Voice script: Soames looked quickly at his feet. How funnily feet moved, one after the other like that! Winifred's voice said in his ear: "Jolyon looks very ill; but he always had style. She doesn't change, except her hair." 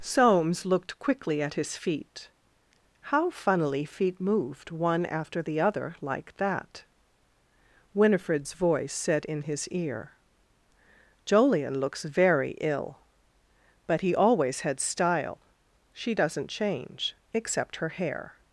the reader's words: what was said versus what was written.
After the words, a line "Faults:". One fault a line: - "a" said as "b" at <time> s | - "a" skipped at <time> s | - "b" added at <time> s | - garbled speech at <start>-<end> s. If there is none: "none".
Soames looked quickly at his feet. How funnily feet moved, one after the other like that! Winifred's voice said in his ear: "Jolyon looks very ill; but he always had style. She doesn't change, except her hair."
Faults:
none